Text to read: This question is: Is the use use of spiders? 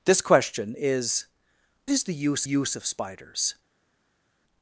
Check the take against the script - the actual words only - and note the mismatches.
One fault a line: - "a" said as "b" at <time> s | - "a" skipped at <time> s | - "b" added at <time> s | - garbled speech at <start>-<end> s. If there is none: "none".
none